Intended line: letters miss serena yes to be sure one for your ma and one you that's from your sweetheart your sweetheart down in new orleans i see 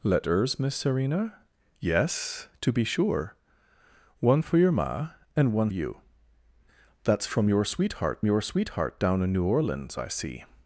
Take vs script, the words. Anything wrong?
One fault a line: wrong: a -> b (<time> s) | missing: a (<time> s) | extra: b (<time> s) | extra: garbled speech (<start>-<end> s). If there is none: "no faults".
no faults